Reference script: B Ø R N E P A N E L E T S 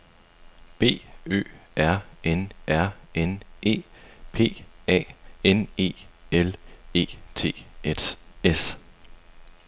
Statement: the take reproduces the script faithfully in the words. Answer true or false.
false